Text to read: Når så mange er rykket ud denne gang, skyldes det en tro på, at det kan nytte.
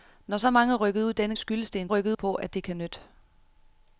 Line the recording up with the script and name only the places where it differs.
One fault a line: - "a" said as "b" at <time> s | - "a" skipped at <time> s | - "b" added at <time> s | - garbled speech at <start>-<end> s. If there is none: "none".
- "gang" skipped at 1.4 s
- "tro" said as "rykket" at 1.9 s